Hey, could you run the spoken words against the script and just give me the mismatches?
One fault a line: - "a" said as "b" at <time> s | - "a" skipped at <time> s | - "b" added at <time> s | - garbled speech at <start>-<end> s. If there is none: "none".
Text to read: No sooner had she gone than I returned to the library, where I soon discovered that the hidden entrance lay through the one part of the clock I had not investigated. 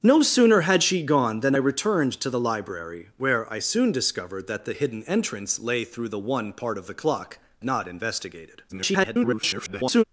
- "I" skipped at 1.5 s
- "I had" skipped at 7.4 s
- garbled speech at 8.7-10.0 s